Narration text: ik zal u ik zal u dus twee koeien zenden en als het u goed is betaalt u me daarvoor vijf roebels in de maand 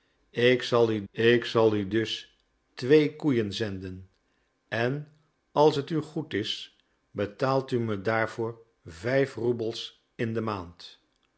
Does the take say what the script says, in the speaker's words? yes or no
yes